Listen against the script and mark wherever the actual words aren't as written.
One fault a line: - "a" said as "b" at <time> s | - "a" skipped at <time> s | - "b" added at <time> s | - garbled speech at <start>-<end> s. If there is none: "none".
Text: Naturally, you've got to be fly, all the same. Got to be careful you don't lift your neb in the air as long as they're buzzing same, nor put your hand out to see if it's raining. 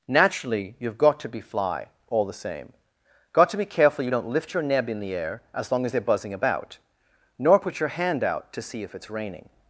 - "same" said as "about" at 6.3 s